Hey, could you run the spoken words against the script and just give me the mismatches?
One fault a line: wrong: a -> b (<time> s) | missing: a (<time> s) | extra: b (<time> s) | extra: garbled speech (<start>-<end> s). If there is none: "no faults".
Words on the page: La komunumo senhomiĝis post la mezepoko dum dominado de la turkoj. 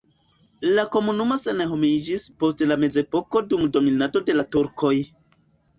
no faults